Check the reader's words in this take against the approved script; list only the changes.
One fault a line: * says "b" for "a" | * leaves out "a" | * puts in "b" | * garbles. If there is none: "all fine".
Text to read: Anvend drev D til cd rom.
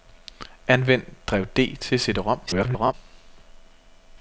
* garbles